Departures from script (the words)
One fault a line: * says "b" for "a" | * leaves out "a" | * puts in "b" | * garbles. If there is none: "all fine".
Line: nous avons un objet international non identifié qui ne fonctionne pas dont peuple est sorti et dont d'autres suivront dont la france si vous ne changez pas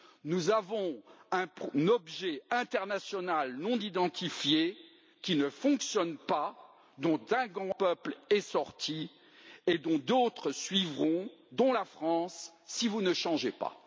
all fine